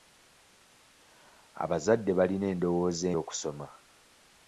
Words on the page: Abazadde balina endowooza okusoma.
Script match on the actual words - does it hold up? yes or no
yes